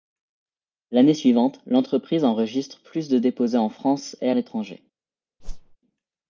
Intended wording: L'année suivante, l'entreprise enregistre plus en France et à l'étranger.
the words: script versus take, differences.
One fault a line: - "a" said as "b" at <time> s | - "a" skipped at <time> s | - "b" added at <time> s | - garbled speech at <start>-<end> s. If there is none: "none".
- "de déposés" added at 3.1 s